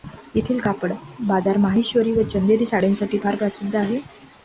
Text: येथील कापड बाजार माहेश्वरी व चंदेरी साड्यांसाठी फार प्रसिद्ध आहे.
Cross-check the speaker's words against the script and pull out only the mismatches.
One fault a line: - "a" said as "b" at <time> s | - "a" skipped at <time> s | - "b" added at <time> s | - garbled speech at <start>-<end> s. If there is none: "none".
none